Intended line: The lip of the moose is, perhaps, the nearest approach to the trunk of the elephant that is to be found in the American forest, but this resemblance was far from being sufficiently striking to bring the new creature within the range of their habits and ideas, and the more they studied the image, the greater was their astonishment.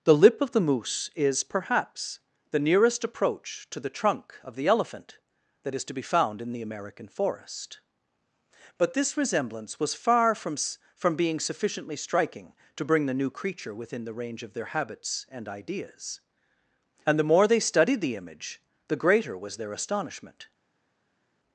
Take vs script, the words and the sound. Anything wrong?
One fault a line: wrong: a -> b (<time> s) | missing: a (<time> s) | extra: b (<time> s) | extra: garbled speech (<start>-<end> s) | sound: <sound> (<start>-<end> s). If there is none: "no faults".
extra: from (11.0 s)